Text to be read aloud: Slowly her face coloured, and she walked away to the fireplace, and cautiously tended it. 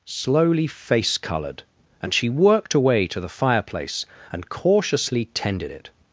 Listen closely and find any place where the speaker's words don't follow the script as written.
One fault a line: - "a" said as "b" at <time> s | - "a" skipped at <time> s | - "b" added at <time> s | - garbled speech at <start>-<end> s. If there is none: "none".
- "her" skipped at 0.7 s
- "walked" said as "worked" at 2.3 s